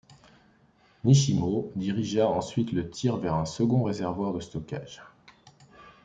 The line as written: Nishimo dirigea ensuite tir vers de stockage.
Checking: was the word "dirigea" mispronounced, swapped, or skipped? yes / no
no